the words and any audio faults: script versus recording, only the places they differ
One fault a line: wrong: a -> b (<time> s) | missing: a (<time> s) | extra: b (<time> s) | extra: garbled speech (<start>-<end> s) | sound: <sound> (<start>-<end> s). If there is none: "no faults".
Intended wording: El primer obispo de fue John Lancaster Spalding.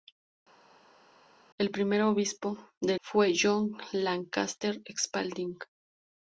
no faults